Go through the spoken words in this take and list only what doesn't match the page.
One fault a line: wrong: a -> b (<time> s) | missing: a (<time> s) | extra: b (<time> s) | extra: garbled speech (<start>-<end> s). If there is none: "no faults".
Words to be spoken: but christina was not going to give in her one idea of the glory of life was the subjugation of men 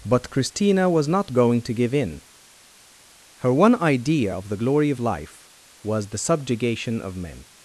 no faults